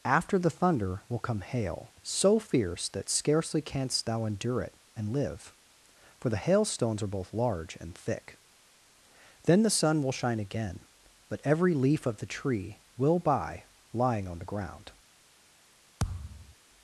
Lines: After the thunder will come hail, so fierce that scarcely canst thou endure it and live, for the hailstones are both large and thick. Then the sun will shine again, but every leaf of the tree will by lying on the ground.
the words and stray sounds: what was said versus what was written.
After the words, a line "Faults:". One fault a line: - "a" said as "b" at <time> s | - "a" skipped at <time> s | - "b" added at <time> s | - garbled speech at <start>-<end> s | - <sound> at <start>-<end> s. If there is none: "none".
After the thunder will come hail, so fierce that scarcely canst thou endure it and live, for the hailstones are both large and thick. Then the sun will shine again, but every leaf of the tree will by lying on the ground.
Faults:
- thud at 16.0-16.5 s